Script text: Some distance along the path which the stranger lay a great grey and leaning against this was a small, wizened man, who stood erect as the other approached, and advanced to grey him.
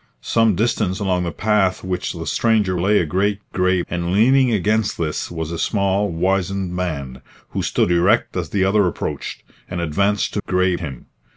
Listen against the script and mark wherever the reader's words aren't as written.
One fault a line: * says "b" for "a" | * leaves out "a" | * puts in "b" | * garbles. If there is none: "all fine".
all fine